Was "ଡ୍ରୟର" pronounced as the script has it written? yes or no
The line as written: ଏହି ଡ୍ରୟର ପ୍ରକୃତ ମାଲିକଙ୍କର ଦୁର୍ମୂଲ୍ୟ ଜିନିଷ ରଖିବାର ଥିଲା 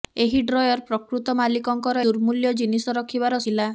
yes